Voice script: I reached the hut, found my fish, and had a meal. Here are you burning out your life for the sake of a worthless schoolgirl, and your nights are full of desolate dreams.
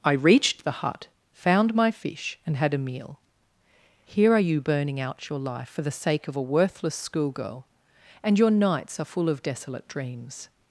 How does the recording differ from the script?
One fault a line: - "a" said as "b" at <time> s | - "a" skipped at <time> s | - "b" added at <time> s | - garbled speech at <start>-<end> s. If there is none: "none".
none